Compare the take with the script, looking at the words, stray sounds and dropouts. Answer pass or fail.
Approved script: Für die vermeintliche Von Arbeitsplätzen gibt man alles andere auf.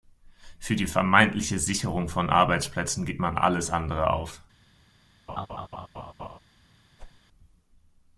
fail